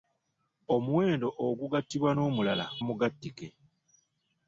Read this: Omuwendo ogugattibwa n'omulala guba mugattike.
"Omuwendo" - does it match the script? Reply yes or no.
yes